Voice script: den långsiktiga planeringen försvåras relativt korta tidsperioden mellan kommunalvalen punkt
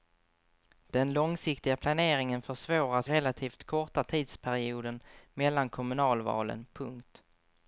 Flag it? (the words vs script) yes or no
no